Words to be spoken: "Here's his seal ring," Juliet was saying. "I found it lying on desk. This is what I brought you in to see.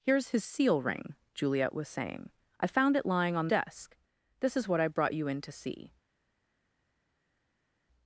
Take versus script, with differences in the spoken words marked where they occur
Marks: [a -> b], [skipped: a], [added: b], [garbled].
"Here's his seal ring," Juliet was saying. "I found it lying on desk. This is what I brought you in to see.